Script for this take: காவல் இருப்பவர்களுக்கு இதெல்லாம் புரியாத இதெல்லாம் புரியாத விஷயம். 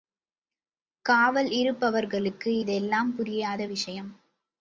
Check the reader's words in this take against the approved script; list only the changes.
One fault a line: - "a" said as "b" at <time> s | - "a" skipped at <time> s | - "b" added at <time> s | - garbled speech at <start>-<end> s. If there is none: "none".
- "இதெல்லாம் புரியாத" skipped at 3.7 s